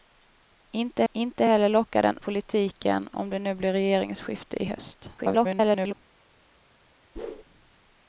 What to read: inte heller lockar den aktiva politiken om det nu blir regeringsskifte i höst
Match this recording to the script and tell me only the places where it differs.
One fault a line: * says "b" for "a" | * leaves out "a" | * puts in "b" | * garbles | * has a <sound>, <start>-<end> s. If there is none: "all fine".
* puts in "inte"
* leaves out "aktiva"
* garbles
* has a whoosh, 7.2-7.4 s